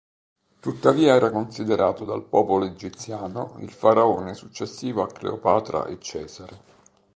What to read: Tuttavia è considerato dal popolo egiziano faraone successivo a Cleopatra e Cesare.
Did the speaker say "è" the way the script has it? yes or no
no